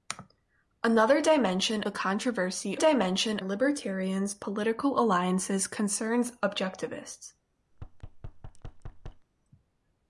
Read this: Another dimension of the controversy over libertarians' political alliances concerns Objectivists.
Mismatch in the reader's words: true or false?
true